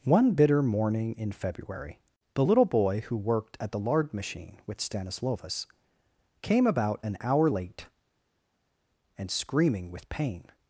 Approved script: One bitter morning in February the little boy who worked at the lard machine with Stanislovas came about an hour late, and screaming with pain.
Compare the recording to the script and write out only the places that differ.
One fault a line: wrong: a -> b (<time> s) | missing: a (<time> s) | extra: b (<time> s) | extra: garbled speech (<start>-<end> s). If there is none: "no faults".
no faults